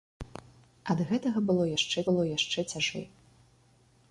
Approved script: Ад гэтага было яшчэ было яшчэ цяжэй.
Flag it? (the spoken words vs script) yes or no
no